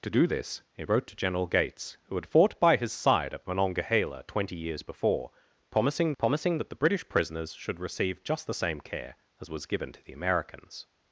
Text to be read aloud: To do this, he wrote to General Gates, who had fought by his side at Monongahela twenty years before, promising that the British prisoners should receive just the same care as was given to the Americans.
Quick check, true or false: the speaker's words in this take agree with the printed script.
false